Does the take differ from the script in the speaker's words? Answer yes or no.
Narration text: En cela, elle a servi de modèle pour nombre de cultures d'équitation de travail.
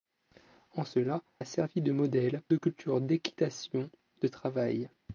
yes